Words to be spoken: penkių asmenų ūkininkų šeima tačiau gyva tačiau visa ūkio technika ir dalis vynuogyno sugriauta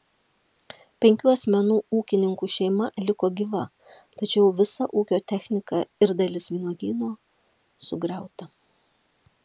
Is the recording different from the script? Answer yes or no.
yes